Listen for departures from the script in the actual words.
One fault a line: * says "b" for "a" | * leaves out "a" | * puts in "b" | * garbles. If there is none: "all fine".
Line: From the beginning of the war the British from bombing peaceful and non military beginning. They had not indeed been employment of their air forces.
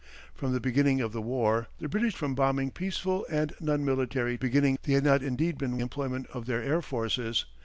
all fine